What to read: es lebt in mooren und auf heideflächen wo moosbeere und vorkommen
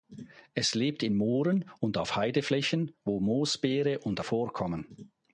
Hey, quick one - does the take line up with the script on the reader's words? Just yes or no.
yes